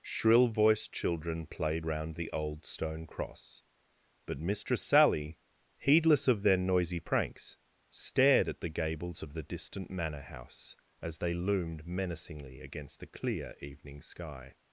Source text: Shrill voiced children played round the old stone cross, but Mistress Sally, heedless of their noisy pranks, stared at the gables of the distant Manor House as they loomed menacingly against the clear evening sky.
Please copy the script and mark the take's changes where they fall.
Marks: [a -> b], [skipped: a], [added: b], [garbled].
Shrill voiced children played round the old stone cross, but Mistress Sally, heedless of their noisy pranks, stared at the gables of the distant Manor House as they loomed menacingly against the clear evening sky.